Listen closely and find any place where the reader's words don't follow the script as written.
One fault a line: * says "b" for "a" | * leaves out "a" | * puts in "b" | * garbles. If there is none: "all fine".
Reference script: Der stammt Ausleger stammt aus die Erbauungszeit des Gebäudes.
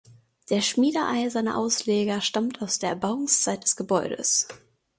* says "schmiedeeiserne" for "stammt"
* says "der" for "die"